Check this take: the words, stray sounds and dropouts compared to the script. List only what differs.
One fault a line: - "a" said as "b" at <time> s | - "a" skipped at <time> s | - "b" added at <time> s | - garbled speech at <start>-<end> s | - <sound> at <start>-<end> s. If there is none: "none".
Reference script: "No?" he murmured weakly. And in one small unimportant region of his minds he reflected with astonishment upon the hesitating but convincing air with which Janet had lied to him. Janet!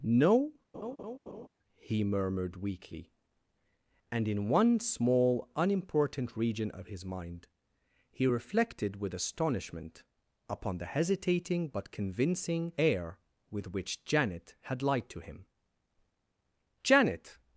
- laugh at 0.7-1.5 s
- "minds" said as "mind" at 7.0 s